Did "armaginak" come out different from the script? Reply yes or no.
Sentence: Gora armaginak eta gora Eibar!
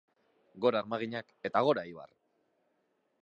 no